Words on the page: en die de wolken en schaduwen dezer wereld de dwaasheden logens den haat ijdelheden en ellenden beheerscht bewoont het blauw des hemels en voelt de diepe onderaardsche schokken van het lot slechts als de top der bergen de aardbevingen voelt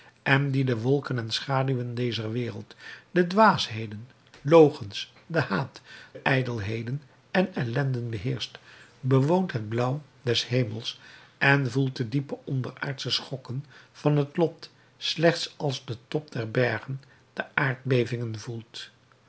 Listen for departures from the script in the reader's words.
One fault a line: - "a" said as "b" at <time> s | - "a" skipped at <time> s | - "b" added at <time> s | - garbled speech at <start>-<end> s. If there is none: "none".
none